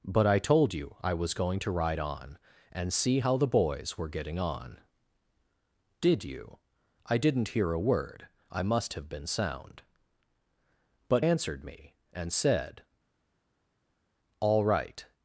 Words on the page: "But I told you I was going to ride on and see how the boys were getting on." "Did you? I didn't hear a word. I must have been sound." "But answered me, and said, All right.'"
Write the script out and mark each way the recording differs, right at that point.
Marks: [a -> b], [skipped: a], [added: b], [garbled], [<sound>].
"But I told you I was going to ride on and see how the boys were getting on." "Did you? I didn't hear a word. I must have been sound." "But answered me, and said, All right.'"